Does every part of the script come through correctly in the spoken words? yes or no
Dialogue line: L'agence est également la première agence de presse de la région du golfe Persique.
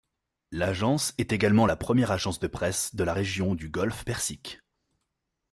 yes